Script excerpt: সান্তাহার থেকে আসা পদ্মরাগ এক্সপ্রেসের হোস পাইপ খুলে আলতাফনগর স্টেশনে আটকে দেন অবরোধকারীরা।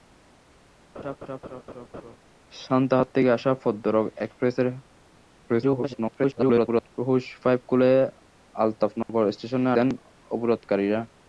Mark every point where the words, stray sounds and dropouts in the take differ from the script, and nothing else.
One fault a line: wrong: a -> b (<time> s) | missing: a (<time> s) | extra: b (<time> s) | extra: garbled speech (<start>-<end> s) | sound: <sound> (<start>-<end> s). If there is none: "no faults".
sound: laugh (0.9-2.2 s)
extra: garbled speech (5.5-6.9 s)
sound: dropout (9.0-9.1 s)
missing: আটকে (9.7 s)